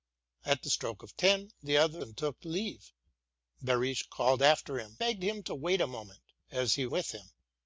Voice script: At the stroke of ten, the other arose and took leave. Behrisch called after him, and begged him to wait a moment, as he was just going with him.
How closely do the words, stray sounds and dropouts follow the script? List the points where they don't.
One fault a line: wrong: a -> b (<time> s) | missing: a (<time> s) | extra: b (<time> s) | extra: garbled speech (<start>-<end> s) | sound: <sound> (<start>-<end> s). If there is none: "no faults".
missing: arose (2.0 s)
missing: and (5.0 s)
missing: was just going (6.9 s)